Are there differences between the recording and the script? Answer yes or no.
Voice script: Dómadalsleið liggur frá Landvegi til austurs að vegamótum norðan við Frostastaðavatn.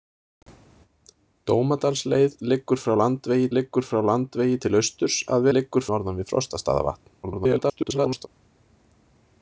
yes